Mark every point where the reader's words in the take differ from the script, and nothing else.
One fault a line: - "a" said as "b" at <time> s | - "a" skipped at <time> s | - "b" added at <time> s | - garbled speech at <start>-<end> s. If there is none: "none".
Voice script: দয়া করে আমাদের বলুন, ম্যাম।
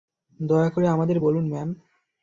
none